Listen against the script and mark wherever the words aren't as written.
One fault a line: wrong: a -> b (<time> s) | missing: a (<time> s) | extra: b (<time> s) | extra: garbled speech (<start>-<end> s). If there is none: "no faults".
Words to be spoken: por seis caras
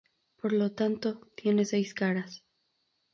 extra: lo tanto tiene (0.5 s)